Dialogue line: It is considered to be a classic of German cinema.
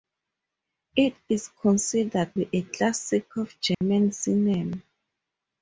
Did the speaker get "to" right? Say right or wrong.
wrong